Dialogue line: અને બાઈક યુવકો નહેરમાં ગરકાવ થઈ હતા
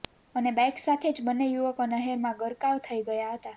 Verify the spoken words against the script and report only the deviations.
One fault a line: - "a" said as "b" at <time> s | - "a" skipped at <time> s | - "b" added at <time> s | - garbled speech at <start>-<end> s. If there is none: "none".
- "સાથે જ બંને" added at 0.8 s
- "ગયા" added at 3.0 s